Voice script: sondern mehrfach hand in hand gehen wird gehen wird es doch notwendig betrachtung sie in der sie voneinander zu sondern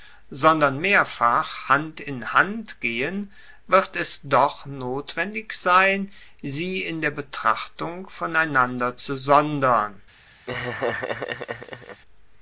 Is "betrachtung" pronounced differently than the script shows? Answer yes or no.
yes